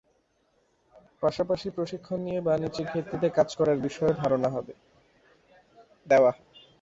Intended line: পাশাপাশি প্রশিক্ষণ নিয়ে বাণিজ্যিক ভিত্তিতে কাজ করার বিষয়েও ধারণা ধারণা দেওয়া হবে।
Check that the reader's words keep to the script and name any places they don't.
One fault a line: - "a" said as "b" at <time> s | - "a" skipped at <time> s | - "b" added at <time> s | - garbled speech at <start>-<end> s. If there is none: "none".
- "ধারণা" skipped at 4.5 s